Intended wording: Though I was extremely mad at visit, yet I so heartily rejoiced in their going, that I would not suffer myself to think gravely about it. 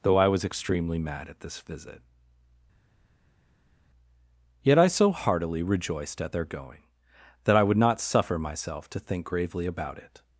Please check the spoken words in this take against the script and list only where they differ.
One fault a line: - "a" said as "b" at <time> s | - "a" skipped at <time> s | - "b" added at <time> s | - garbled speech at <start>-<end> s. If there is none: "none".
- "this" added at 1.4 s
- "in" said as "at" at 6.2 s